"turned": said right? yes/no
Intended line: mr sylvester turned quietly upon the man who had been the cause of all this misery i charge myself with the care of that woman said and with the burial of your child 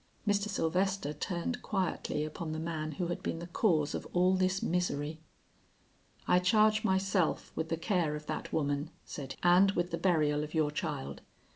yes